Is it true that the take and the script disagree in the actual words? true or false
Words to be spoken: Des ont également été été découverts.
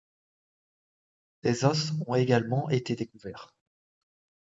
true